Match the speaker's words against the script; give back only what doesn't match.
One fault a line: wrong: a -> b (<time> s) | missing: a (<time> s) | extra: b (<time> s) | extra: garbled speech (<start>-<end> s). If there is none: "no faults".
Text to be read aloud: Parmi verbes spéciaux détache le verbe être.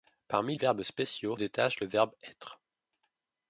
no faults